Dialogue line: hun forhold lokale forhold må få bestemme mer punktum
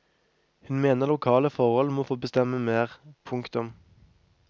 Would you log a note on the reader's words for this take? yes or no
yes